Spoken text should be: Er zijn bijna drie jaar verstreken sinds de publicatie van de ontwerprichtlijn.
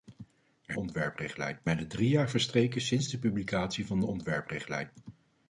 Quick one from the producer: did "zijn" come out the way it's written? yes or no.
no